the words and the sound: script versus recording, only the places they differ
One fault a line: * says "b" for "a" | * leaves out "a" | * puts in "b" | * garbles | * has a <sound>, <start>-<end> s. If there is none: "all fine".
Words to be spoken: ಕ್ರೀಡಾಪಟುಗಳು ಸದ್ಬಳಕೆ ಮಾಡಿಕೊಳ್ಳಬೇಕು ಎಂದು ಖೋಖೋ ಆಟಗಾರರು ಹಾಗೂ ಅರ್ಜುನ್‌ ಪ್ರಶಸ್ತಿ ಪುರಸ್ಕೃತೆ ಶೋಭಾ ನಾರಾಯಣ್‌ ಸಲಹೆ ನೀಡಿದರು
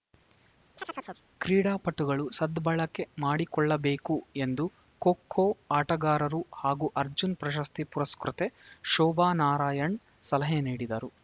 * has a chirp, 0.8-1.2 s